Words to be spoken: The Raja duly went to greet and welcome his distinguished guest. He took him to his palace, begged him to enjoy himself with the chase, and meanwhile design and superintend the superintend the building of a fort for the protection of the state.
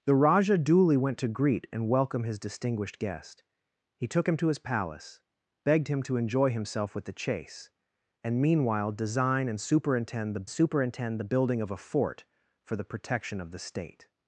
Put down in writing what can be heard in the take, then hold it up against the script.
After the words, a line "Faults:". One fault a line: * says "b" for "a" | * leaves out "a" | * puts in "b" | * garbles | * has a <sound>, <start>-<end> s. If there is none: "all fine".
The Raja duly went to greet and welcome his distinguished guest. He took him to his palace, begged him to enjoy himself with the chase, and meanwhile design and superintend the superintend the building of a fort for the protection of the state.
Faults:
all fine